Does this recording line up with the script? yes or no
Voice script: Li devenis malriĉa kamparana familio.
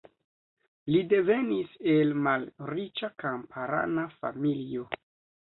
no